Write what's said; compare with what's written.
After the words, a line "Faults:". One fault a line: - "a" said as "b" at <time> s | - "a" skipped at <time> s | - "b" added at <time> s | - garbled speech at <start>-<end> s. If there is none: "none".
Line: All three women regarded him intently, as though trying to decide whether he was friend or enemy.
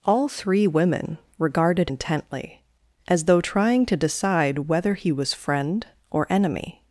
All three women regarded intently, as though trying to decide whether he was friend or enemy.
Faults:
- "him" skipped at 1.9 s